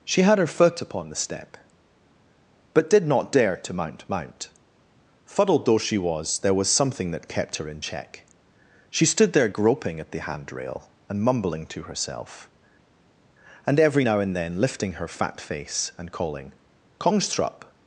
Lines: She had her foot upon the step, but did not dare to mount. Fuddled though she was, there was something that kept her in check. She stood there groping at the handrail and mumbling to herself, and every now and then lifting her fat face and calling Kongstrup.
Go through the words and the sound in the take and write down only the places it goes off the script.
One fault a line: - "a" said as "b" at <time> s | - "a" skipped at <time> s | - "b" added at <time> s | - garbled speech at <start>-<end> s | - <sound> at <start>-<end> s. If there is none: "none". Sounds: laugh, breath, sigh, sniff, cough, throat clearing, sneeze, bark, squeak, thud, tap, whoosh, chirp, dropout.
- "mount" added at 4.1 s